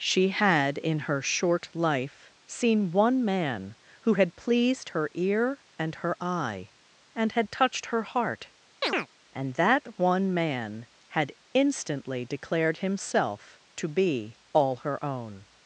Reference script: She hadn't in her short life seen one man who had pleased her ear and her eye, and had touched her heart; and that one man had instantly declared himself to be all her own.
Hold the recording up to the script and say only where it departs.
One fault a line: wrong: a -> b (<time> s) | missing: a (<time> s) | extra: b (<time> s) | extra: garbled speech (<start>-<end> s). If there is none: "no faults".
wrong: hadn't -> had (0.3 s)